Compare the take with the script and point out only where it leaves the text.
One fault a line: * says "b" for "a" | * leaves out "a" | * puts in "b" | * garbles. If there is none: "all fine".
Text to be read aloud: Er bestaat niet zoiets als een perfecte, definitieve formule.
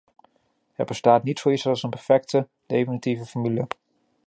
all fine